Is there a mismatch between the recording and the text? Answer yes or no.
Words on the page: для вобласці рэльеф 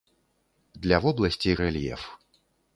no